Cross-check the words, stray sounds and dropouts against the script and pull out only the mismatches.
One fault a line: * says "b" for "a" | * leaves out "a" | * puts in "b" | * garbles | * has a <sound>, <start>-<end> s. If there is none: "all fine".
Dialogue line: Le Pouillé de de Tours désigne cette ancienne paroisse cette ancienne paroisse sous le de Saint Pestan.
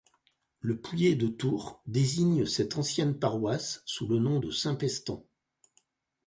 * leaves out "de"
* leaves out "cette ancienne paroisse"
* puts in "nom"